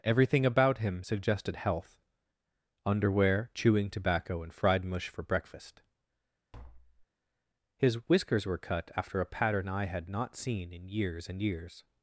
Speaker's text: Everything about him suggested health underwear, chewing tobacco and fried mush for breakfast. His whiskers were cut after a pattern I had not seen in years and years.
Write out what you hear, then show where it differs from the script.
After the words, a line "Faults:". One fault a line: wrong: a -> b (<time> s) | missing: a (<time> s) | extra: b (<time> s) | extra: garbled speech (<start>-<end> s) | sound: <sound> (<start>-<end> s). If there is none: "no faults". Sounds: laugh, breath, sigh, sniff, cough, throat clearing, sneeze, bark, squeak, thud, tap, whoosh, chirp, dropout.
Everything about him suggested health underwear, chewing tobacco and fried mush for breakfast. His whiskers were cut after a pattern I had not seen in years and years.
Faults:
sound: tap (6.5-7.1 s)